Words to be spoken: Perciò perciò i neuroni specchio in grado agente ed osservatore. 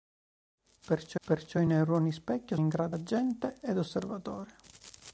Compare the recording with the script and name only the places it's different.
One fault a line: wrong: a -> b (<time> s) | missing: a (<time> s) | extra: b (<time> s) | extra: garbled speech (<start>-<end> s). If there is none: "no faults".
no faults